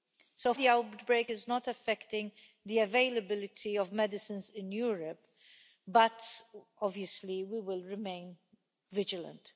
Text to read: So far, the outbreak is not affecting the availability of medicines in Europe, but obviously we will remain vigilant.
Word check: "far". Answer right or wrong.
wrong